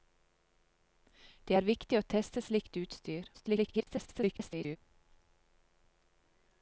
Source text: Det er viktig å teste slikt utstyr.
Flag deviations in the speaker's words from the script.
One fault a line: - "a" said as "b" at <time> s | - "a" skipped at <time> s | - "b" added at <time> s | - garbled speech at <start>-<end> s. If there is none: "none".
- garbled speech at 3.3-4.8 s